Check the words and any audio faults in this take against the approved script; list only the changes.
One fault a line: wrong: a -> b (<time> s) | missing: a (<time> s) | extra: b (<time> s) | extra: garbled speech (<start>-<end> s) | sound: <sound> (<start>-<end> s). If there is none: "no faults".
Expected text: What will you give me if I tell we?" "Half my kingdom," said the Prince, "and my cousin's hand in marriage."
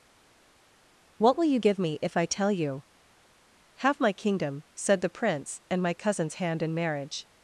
wrong: we -> you (2.5 s)